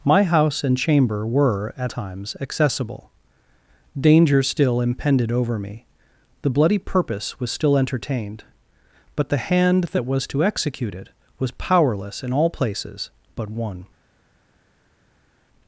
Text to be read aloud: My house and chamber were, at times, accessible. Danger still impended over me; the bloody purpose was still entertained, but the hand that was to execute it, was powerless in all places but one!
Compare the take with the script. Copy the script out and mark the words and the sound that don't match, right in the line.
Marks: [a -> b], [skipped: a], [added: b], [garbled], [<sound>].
My house and chamber were, at times, accessible. Danger still impended over me; the bloody purpose was still entertained, but the hand that was to execute it, was powerless in all places but one!